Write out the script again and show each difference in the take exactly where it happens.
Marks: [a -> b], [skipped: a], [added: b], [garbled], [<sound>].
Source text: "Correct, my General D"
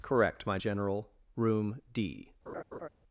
"Correct, my General [added: Room] D" [laugh]